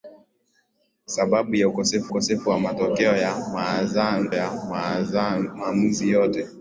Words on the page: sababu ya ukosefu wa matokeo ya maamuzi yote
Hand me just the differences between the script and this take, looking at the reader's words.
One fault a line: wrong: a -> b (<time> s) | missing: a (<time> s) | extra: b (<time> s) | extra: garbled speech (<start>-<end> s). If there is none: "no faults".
extra: ukosefu (2.1 s)
extra: ya (4.3 s)